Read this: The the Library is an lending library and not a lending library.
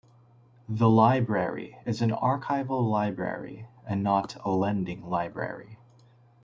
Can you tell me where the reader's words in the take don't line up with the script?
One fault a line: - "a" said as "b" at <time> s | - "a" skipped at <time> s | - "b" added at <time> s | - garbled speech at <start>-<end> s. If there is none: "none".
- "the" skipped at 0.9 s
- "lending" said as "archival" at 2.1 s